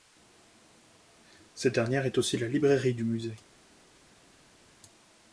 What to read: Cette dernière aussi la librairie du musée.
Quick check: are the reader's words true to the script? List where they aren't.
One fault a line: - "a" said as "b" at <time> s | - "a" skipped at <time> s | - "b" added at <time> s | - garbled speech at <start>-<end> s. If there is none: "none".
- "est" added at 2.1 s